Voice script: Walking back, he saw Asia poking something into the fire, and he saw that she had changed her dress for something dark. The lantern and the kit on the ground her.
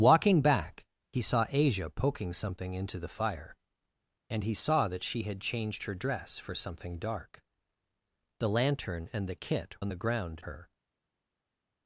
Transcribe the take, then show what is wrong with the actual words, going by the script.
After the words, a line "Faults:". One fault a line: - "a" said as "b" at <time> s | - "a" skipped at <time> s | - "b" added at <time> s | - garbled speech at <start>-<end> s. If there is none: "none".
Walking back, he saw Asia poking something into the fire, and he saw that she had changed her dress for something dark. The lantern and the kit on the ground her.
Faults:
none